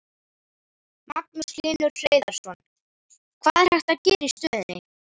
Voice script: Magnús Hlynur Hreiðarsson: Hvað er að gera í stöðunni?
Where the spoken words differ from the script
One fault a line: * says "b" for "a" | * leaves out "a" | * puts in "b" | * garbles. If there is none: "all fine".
* puts in "hægt"